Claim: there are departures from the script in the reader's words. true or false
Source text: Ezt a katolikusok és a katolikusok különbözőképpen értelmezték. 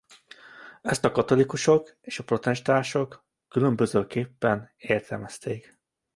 true